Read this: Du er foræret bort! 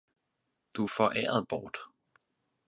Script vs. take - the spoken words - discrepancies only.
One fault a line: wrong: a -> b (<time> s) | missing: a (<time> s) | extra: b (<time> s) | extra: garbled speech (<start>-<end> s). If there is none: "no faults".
no faults